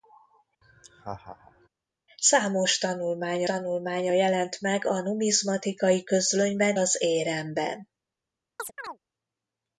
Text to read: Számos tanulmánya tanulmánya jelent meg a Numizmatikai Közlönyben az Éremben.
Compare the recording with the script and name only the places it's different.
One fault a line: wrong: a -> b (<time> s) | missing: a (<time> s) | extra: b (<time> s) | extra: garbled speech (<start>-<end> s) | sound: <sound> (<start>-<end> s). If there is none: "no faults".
sound: laugh (0.6-1.7 s)
sound: chirp (8.6-9.0 s)